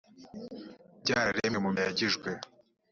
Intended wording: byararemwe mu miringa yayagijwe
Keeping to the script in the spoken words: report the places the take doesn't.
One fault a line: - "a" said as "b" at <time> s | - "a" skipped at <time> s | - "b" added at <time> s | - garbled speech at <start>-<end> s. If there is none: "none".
- "miringa" skipped at 1.7 s